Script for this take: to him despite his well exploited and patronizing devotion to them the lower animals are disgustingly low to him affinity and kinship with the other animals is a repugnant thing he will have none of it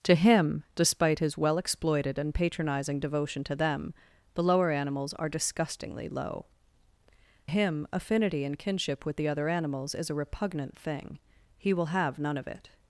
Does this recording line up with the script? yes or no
no